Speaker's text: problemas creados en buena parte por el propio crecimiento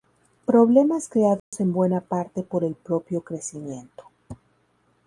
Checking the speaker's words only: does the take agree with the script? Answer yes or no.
yes